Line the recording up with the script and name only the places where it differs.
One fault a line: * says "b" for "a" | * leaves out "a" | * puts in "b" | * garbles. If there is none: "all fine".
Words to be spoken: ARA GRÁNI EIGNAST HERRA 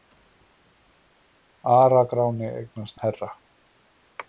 all fine